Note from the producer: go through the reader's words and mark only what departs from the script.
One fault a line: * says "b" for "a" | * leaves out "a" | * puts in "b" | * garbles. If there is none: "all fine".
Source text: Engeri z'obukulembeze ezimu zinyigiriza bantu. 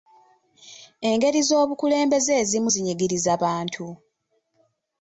all fine